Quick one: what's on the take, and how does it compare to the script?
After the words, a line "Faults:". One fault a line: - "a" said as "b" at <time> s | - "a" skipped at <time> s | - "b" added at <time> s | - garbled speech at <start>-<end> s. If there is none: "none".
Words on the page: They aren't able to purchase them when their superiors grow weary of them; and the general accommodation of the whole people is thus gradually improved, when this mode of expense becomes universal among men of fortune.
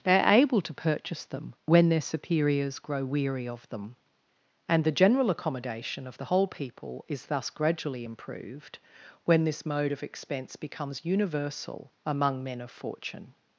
They are able to purchase them when their superiors grow weary of them; and the general accommodation of the whole people is thus gradually improved, when this mode of expense becomes universal among men of fortune.
Faults:
- "aren't" said as "are" at 0.2 s